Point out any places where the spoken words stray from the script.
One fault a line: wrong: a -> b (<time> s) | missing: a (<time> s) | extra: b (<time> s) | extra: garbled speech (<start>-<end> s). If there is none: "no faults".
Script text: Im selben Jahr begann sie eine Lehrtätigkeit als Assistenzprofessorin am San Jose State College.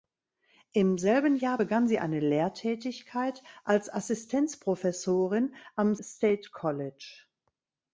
missing: San Jose (6.0 s)